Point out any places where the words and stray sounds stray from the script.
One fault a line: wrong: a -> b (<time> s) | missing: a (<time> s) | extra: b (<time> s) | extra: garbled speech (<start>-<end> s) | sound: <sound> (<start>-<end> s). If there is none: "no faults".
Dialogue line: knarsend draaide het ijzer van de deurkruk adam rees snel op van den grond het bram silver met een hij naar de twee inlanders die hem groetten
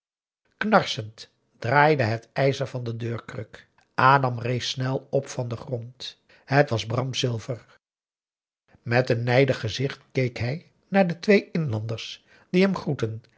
extra: was (6.7 s)
extra: nijdig gezicht keek (9.2 s)